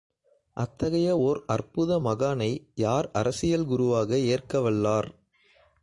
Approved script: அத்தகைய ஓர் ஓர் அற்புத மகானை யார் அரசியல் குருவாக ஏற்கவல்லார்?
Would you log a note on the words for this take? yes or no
yes